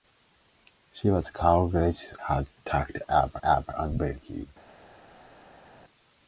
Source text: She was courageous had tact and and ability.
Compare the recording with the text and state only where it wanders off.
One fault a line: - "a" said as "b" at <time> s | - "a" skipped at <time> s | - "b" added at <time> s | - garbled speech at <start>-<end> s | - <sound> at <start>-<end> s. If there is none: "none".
none